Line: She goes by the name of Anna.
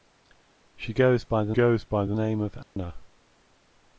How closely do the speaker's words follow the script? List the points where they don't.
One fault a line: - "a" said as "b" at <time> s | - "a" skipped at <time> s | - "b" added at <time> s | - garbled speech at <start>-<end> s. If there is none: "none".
- "goes by the" added at 1.5 s